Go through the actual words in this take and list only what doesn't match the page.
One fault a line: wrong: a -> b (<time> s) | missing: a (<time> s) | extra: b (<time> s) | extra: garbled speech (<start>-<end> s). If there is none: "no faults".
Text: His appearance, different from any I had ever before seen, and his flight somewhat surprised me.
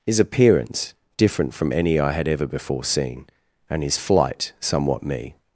missing: surprised (5.0 s)